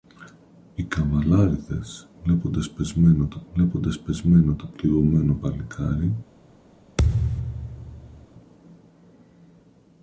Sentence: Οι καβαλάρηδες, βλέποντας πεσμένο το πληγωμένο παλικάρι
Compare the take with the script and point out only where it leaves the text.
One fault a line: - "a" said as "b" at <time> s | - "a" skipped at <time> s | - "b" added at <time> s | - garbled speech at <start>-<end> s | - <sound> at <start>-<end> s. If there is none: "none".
- "βλέποντας πεσμένο το" added at 3.5 s
- thud at 7.0-8.3 s